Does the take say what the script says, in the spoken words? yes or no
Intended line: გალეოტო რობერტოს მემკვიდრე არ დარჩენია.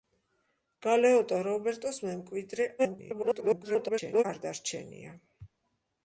no